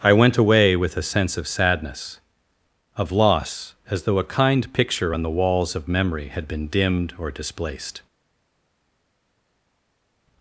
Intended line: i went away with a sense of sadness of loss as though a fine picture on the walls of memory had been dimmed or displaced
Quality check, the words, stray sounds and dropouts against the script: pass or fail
fail